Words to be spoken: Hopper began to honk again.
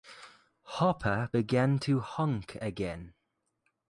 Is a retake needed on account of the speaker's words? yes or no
no